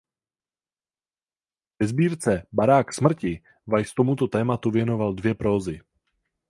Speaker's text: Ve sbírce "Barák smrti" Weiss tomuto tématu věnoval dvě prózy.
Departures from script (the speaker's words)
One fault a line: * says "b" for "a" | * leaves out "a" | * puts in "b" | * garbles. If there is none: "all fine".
all fine